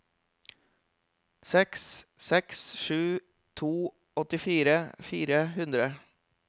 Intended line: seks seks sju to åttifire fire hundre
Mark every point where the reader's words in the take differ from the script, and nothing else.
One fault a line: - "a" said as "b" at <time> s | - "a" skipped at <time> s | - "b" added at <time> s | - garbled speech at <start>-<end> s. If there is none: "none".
none